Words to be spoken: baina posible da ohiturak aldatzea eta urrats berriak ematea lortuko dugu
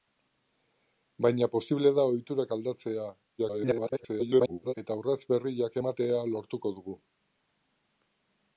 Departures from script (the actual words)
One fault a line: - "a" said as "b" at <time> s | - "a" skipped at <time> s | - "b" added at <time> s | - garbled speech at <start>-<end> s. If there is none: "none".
- garbled speech at 3.4-4.7 s